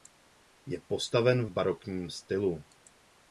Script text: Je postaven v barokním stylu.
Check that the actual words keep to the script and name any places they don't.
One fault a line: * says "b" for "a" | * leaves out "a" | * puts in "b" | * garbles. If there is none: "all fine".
all fine